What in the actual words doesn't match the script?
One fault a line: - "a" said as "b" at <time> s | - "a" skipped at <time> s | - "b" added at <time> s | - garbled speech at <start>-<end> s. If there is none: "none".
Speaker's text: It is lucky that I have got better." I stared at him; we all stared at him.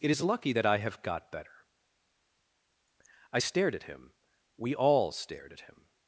none